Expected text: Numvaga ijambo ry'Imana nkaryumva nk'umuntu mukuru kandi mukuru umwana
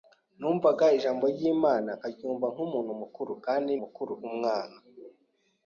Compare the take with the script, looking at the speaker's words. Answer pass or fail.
pass